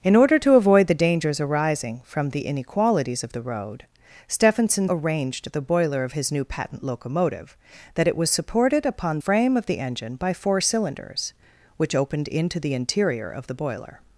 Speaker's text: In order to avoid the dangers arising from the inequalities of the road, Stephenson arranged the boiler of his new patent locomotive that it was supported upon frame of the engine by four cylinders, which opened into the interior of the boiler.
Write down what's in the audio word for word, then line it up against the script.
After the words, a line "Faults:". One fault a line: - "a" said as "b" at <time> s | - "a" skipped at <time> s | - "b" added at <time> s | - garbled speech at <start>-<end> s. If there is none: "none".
In order to avoid the dangers arising from the inequalities of the road, Stephenson arranged the boiler of his new patent locomotive that it was supported upon frame of the engine by four cylinders, which opened into the interior of the boiler.
Faults:
none